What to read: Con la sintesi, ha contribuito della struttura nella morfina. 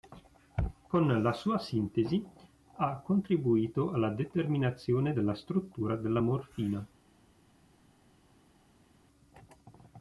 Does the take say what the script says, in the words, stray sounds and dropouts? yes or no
no